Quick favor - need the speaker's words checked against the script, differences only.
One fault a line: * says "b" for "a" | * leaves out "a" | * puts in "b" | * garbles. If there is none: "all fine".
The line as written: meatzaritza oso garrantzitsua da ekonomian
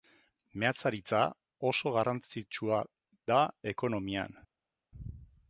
all fine